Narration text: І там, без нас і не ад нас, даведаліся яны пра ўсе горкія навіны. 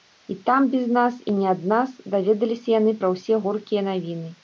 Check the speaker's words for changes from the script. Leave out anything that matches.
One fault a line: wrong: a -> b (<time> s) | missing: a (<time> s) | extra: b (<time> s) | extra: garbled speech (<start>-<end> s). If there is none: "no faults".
no faults